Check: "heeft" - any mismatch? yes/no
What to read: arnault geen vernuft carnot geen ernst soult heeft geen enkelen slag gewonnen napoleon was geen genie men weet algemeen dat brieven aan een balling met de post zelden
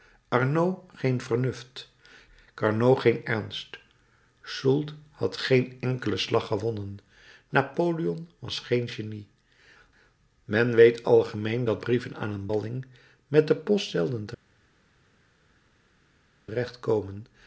yes